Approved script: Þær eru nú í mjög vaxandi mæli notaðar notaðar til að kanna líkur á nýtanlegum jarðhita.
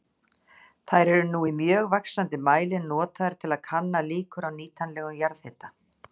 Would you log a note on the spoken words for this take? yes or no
yes